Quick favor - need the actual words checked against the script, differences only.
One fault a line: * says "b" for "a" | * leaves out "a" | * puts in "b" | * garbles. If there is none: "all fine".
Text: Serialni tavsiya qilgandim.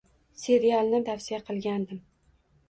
all fine